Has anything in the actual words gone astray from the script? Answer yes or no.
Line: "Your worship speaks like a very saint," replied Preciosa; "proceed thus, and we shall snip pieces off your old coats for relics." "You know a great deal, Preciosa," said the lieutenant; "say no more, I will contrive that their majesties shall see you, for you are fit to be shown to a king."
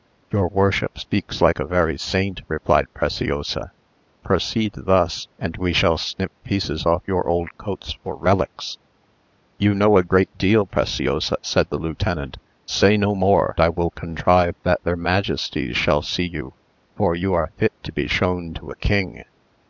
no